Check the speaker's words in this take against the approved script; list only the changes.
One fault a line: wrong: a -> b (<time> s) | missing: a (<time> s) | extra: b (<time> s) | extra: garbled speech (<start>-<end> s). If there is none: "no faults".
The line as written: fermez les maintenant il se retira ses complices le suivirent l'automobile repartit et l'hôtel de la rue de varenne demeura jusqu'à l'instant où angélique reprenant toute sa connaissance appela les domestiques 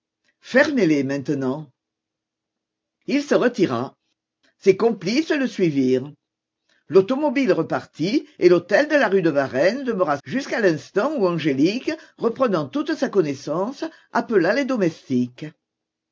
no faults